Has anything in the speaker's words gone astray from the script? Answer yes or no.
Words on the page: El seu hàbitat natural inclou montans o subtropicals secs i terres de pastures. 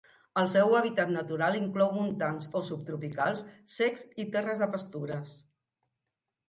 no